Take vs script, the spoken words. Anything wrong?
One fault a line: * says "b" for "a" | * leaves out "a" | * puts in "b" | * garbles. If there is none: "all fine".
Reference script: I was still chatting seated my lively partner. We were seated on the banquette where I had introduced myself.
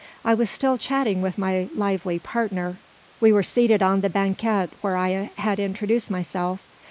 * says "with" for "seated"